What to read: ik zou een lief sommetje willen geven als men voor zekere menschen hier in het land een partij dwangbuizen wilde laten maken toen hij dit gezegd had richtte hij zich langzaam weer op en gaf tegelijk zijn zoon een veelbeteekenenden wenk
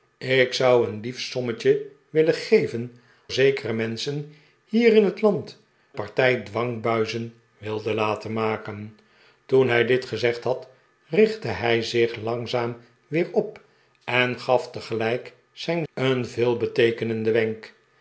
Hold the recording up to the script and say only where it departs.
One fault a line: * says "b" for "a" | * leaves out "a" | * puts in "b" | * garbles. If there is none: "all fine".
* leaves out "als men voor"
* leaves out "een"
* leaves out "zoon"